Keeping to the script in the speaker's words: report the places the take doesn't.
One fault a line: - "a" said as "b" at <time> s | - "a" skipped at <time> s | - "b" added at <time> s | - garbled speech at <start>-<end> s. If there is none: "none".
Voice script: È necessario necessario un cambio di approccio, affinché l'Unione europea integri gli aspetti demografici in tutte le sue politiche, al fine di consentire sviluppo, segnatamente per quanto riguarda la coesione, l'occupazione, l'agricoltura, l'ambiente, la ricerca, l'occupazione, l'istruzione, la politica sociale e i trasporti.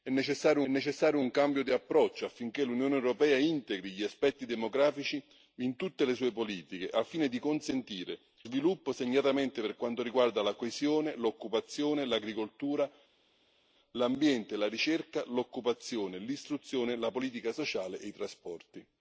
none